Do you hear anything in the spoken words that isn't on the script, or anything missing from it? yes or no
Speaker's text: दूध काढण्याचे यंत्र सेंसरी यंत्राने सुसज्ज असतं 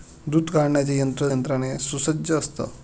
yes